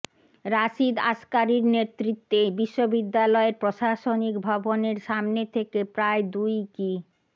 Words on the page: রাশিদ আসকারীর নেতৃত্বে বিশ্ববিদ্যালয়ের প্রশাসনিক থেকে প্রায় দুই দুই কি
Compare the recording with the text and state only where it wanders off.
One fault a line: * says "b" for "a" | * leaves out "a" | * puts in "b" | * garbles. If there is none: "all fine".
* puts in "ভবনের সামনে"
* leaves out "দুই"